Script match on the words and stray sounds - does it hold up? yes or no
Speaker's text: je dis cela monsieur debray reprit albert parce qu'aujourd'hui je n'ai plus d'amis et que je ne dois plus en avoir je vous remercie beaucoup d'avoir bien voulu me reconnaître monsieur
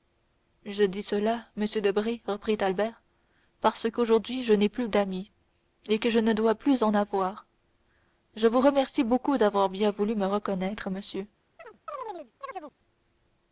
no